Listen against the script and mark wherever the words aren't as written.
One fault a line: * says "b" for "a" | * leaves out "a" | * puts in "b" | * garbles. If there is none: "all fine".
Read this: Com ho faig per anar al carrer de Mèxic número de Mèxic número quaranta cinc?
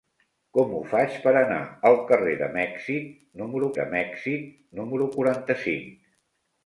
all fine